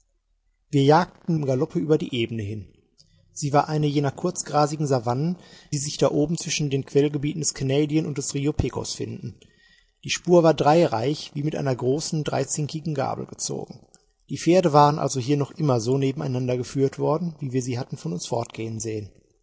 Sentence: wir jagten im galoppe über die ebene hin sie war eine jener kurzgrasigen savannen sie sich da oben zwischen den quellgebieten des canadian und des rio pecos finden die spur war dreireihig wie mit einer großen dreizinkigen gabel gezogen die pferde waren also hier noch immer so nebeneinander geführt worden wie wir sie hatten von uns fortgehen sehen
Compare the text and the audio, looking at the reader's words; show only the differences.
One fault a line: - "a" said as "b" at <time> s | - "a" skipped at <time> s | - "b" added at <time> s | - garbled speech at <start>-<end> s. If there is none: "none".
none